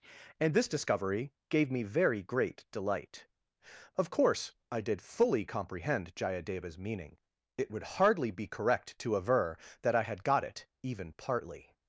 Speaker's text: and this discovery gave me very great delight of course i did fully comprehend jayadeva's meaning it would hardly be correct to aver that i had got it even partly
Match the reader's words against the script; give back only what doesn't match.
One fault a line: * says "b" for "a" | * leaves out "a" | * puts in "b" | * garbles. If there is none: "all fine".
all fine